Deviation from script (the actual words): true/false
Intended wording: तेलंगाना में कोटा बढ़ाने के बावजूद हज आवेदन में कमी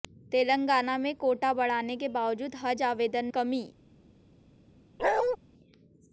true